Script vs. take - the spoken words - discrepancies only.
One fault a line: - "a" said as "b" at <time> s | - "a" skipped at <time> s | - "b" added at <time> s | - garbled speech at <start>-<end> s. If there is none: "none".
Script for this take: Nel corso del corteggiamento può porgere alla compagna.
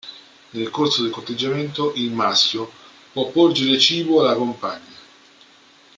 - "il maschio" added at 2.0 s
- "cibo" added at 3.8 s